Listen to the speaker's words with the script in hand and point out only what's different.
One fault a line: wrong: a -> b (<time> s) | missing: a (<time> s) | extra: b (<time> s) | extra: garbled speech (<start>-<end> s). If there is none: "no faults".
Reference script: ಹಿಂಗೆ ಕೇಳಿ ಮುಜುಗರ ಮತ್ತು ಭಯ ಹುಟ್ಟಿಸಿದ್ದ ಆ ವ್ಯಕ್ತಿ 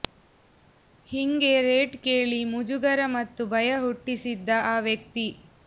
extra: ರೇಟ್ (1.6 s)